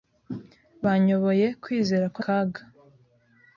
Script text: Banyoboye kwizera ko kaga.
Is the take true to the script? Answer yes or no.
yes